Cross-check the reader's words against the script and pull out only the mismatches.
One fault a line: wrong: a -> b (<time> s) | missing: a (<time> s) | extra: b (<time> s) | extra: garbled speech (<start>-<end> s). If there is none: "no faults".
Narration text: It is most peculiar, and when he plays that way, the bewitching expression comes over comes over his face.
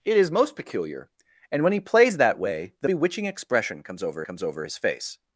no faults